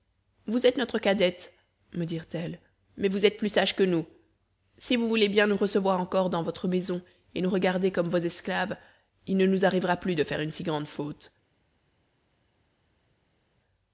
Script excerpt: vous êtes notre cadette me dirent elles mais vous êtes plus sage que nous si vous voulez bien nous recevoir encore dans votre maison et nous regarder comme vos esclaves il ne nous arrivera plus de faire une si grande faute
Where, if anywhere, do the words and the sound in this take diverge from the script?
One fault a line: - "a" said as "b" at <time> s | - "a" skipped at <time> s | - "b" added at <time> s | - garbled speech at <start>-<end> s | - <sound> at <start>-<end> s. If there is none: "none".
none